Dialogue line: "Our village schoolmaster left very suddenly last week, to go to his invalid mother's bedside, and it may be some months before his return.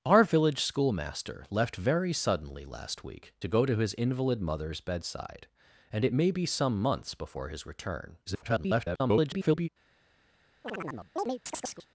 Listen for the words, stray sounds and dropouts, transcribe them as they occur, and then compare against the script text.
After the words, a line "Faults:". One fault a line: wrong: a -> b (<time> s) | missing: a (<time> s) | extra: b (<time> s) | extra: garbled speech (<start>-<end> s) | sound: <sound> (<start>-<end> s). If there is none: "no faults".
"Our village schoolmaster left very suddenly last week, to go to his invalid mother's bedside, and it may be some months before his return. [garbled]
Faults:
extra: garbled speech (8.3-9.7 s)
sound: chirp (10.6-11.9 s)